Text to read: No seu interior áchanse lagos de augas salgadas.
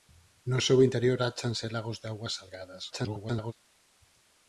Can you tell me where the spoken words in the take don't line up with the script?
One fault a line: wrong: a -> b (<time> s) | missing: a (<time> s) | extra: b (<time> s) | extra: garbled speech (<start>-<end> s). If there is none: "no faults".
extra: garbled speech (2.9-3.5 s)